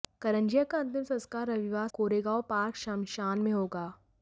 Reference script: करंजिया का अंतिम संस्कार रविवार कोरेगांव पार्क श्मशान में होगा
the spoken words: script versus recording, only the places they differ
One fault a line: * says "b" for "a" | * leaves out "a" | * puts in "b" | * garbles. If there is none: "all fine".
all fine